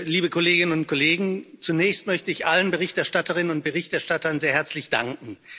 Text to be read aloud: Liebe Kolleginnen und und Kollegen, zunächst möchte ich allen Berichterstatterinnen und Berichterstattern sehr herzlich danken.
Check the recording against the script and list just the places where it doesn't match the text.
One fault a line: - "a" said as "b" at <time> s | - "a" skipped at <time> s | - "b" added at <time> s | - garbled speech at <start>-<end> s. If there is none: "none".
- "und" skipped at 0.9 s